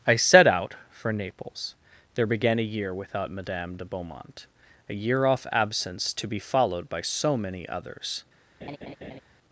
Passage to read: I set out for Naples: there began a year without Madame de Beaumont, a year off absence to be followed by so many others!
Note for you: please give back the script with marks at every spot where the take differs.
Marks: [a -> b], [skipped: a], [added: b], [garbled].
I set out for Naples: there began a year without Madame de Beaumont, a year off absence to be followed by so many others!